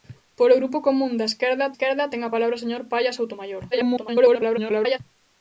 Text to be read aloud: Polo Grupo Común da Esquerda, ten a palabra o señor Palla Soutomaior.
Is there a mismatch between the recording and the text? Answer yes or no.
yes